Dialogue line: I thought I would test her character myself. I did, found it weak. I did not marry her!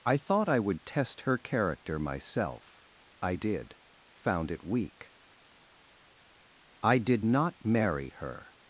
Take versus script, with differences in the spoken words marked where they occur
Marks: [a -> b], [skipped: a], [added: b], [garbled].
I thought I would test her character myself. I did, found it weak. I did not marry her!